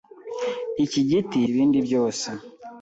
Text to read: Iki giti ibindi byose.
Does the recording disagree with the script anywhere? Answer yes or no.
no